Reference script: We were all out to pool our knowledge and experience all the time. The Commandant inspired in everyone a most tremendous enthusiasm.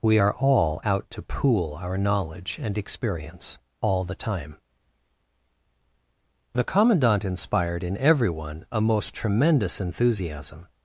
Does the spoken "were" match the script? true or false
false